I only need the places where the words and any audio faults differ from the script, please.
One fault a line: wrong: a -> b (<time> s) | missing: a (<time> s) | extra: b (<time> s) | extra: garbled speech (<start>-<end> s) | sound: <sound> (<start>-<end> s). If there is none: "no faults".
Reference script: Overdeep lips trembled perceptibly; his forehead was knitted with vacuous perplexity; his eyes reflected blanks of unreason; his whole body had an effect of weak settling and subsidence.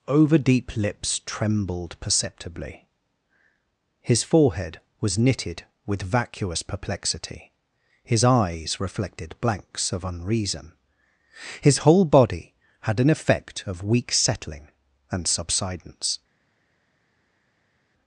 no faults